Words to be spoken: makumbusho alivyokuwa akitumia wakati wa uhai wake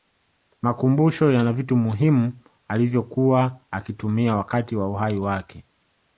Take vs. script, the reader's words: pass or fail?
fail